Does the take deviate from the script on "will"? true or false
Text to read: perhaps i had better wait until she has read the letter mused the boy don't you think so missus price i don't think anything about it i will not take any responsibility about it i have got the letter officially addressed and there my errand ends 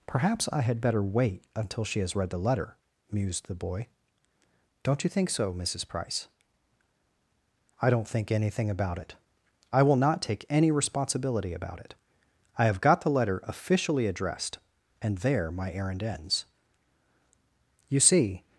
false